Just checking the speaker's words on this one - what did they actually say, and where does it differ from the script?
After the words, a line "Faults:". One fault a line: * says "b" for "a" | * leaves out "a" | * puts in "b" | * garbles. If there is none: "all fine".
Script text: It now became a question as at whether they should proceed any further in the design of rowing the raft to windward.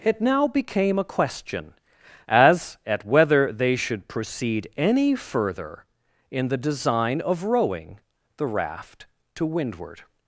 It now became a question as at whether they should proceed any further in the design of rowing the raft to windward.
Faults:
all fine